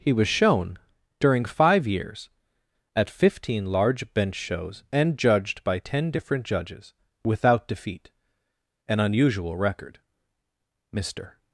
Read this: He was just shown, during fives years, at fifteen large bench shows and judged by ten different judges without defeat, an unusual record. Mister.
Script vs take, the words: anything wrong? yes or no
yes